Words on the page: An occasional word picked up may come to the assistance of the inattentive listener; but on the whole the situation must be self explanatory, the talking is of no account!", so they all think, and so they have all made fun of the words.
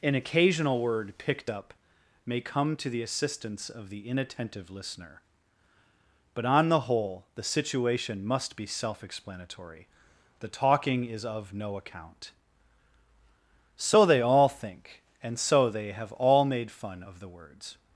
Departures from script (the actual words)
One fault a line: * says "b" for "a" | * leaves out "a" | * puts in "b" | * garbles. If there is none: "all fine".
all fine